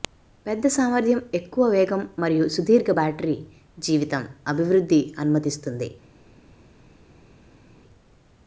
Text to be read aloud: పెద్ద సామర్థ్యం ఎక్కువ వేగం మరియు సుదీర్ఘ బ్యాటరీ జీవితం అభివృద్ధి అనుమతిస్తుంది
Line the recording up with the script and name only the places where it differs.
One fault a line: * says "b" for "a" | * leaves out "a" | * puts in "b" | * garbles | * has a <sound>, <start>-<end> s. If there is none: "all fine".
all fine